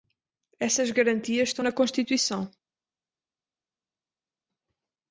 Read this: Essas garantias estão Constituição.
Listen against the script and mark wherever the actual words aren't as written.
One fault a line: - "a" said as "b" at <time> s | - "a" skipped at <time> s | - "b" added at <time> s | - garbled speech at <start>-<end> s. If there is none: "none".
- "na" added at 1.6 s